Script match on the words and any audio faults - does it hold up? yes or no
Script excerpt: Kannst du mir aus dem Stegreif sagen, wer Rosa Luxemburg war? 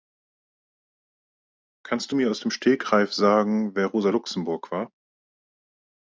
yes